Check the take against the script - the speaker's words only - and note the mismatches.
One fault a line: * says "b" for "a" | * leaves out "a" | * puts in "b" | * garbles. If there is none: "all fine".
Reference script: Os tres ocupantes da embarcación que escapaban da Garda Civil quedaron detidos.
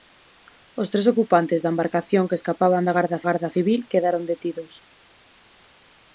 * puts in "Garda"